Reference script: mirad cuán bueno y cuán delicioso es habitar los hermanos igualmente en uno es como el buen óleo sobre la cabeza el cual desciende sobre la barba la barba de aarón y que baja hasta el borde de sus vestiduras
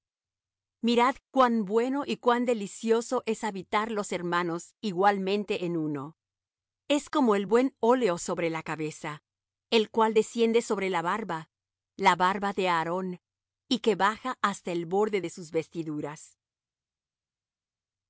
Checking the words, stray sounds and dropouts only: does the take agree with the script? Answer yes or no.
yes